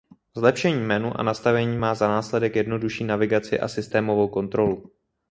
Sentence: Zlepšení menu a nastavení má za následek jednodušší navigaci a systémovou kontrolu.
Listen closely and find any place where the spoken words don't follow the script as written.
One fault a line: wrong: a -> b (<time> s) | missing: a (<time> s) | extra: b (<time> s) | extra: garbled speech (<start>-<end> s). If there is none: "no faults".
no faults